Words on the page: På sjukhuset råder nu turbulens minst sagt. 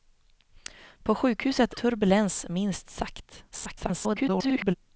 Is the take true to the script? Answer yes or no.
no